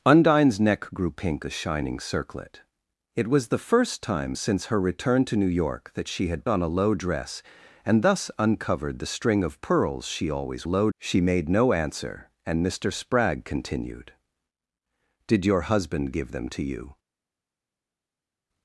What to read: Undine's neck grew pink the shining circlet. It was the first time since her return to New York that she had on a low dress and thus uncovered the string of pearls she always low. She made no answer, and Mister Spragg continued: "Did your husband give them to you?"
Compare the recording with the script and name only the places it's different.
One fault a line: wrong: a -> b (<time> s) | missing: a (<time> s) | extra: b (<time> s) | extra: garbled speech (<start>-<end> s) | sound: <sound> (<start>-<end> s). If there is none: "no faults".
no faults